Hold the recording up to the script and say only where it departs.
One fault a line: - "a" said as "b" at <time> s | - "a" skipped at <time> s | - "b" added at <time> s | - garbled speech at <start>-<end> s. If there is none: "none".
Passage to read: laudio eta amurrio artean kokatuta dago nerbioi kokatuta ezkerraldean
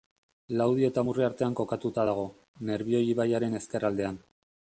- "kokatuta" said as "ibaiaren" at 3.2 s